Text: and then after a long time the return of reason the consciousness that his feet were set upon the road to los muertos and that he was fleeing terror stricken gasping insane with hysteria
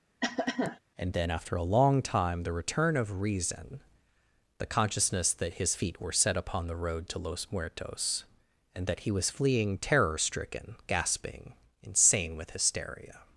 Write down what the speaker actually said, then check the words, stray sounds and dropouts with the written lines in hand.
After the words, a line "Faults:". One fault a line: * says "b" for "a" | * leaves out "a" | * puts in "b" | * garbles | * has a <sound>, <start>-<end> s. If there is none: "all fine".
and then after a long time the return of reason the consciousness that his feet were set upon the road to los muertos and that he was fleeing terror stricken gasping insane with hysteria
Faults:
* has a cough, 0.2-0.8 s